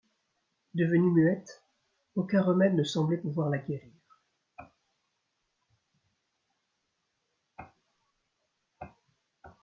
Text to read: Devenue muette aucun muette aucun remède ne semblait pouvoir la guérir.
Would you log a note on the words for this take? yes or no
yes